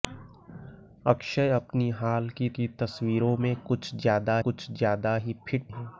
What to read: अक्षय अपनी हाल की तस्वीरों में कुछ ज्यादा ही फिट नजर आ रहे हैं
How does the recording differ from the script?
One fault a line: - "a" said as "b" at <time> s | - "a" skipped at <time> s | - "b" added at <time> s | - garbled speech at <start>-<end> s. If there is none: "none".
- "की" added at 2.6 s
- "कुछ ज्यादा" added at 4.4 s
- "नजर आ रहे" skipped at 5.7 s